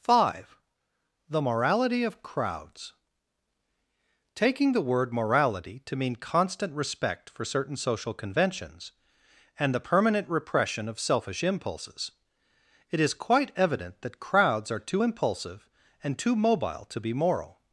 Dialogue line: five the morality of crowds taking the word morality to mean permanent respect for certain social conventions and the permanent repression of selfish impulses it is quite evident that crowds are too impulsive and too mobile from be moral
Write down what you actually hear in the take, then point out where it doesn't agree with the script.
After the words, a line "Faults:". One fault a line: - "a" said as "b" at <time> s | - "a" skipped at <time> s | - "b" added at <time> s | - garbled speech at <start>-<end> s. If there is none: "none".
five the morality of crowds taking the word morality to mean constant respect for certain social conventions and the permanent repression of selfish impulses it is quite evident that crowds are too impulsive and too mobile to be moral
Faults:
- "permanent" said as "constant" at 6.2 s
- "from" said as "to" at 16.8 s